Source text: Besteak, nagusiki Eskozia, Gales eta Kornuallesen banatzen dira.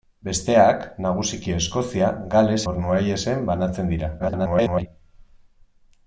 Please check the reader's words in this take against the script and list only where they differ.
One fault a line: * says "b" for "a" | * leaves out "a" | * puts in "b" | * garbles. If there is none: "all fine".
* leaves out "eta"
* garbles